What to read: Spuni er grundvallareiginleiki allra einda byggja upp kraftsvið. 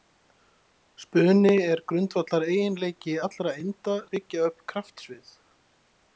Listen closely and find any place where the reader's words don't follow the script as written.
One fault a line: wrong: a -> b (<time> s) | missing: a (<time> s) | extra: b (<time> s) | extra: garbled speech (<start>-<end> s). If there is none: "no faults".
no faults